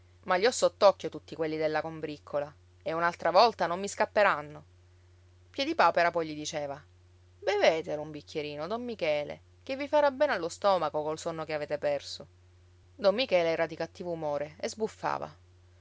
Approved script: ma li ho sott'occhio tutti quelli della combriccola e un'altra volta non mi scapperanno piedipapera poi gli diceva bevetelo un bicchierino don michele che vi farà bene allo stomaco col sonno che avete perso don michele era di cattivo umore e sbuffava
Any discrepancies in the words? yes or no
no